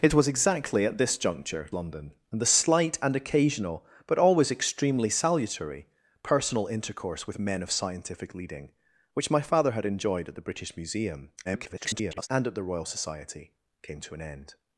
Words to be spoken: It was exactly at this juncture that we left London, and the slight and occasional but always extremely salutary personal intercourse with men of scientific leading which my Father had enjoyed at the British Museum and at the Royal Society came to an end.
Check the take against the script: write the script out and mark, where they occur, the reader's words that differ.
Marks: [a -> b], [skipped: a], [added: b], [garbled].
It was exactly at this juncture [skipped: that we left] London, and the slight and occasional but always extremely salutary personal intercourse with men of scientific leading which my Father had enjoyed at the British Museum [garbled] and at the Royal Society came to an end.